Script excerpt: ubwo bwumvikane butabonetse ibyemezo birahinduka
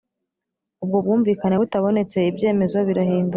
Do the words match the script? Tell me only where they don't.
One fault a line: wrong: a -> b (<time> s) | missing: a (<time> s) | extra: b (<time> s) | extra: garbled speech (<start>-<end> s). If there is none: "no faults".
no faults